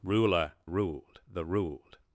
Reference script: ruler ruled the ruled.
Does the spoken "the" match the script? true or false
true